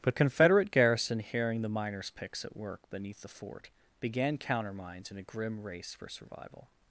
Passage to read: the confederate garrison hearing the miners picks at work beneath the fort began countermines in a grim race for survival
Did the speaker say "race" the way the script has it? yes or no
yes